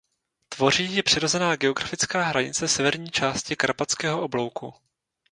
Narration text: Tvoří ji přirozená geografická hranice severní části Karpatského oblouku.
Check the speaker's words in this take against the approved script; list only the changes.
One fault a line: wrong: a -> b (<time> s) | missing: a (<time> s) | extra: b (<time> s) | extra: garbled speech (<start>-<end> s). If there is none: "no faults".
no faults